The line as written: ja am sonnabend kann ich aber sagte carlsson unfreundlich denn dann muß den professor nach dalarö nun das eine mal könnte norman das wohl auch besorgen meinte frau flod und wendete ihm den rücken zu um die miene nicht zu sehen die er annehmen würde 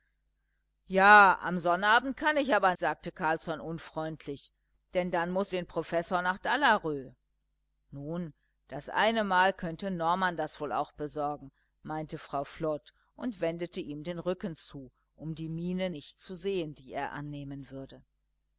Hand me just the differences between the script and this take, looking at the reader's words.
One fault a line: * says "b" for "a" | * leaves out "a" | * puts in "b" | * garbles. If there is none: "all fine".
all fine